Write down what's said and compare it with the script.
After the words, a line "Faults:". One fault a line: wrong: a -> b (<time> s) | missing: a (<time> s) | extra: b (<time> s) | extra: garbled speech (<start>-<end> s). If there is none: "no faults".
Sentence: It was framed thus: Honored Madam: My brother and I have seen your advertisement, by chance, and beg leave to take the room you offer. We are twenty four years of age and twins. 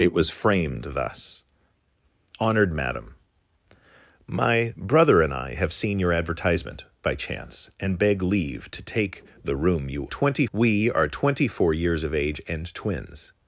It was framed thus: Honored Madam: My brother and I have seen your advertisement, by chance, and beg leave to take the room you twenty. We are twenty four years of age and twins.
Faults:
wrong: offer -> twenty (10.1 s)